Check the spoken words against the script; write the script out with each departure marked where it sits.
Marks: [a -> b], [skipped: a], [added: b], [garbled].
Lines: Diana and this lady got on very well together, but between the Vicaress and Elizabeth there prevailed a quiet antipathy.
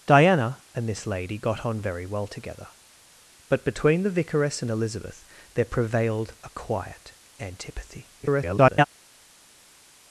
Diana and this lady got on very well together, but between the Vicaress and Elizabeth there prevailed a quiet antipathy. [garbled]